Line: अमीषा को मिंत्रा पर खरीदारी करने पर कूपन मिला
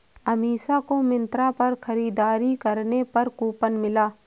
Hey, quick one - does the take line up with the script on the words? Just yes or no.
yes